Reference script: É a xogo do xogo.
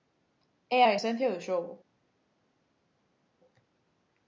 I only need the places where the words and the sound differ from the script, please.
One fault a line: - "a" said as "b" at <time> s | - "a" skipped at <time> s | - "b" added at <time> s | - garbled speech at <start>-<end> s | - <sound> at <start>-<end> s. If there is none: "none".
- "xogo" said as "esencia" at 1.0 s